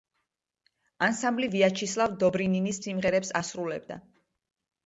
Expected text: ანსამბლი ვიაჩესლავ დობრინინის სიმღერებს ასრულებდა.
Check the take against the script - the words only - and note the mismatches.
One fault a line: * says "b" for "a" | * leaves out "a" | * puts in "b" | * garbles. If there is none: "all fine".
all fine